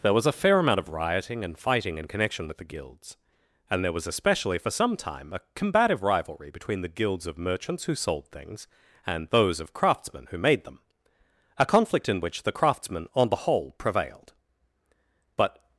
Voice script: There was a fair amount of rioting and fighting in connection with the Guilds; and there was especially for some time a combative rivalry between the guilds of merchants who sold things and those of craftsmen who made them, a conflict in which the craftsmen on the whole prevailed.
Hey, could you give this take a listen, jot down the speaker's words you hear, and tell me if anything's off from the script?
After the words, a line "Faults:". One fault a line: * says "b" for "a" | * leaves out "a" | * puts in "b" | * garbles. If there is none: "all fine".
There was a fair amount of rioting and fighting in connection with the Guilds; and there was especially for some time a combative rivalry between the guilds of merchants who sold things and those of craftsmen who made them, a conflict in which the craftsmen on the whole prevailed. But
Faults:
* puts in "But"